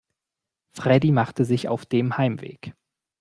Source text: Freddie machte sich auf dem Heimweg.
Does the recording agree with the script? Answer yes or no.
yes